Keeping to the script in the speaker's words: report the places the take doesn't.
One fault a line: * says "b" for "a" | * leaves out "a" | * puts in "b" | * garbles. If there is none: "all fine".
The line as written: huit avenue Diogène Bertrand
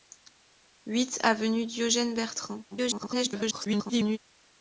* garbles